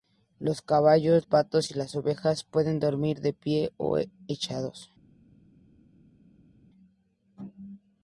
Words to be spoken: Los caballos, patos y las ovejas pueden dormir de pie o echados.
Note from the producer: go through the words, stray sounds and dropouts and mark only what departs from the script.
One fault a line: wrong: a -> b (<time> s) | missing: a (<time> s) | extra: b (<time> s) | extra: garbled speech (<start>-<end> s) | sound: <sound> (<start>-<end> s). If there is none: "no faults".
no faults